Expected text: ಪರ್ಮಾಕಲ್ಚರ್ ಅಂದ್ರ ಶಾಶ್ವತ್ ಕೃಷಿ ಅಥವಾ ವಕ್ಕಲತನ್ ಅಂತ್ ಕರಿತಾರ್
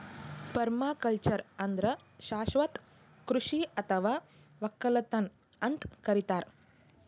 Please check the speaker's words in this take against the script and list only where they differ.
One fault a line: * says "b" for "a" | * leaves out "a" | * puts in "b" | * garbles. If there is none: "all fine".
all fine